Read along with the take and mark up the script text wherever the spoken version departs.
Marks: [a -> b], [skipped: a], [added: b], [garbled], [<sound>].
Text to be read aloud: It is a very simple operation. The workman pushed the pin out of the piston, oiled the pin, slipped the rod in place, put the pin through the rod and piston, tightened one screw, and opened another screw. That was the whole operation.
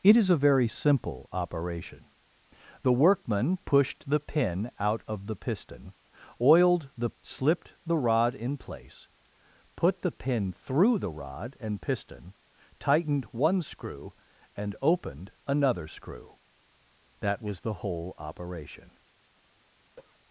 It is a very simple operation. The workman pushed the pin out of the piston, oiled the [skipped: pin,] slipped the rod in place, put the pin through the rod and piston, tightened one screw, and opened another screw. That was the whole operation. [cough]